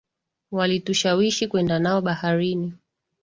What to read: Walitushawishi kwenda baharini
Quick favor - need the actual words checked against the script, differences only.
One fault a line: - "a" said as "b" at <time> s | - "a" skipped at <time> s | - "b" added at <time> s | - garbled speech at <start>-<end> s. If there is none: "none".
- "nao" added at 1.8 s